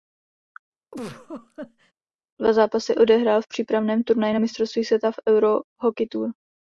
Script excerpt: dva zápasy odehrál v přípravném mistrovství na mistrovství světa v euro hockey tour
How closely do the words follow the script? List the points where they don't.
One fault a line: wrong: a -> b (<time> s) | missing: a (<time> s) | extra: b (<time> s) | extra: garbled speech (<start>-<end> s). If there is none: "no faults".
wrong: mistrovství -> turnaji (4.0 s)